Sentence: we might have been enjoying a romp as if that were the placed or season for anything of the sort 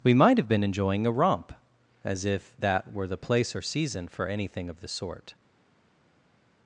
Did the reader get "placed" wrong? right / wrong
wrong